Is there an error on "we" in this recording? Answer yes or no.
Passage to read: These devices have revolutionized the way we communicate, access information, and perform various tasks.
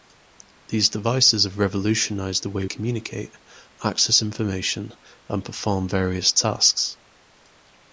yes